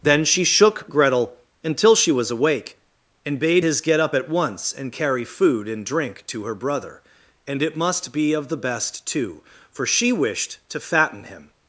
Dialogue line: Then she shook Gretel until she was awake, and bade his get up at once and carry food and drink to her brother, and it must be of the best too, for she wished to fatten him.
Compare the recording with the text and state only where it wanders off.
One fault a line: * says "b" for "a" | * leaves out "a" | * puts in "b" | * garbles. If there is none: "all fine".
all fine